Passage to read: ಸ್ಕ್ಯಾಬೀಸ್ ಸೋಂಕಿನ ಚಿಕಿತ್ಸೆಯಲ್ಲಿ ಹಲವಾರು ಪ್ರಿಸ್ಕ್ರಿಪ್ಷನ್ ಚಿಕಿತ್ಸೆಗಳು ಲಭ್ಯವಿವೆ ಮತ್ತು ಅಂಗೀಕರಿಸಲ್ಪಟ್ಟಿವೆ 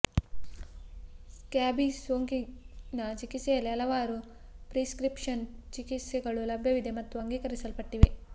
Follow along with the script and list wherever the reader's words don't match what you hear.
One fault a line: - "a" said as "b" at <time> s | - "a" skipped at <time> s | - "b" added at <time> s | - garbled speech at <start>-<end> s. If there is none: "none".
none